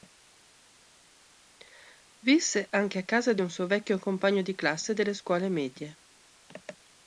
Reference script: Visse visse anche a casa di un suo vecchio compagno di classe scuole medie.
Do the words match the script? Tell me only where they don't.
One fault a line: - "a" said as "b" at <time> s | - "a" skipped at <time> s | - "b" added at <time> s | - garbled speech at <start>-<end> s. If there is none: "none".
- "visse" skipped at 2.6 s
- "delle" added at 4.9 s